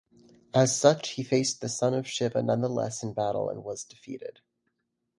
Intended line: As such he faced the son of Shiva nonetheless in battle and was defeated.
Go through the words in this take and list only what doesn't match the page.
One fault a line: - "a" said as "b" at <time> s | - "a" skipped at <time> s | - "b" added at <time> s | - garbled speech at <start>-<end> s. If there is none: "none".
none